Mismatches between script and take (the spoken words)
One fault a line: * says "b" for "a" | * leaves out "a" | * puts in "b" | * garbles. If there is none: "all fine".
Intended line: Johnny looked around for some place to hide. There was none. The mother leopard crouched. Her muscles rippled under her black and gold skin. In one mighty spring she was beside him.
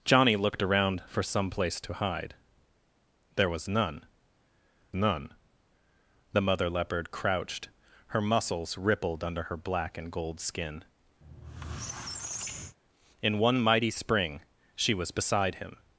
* puts in "none"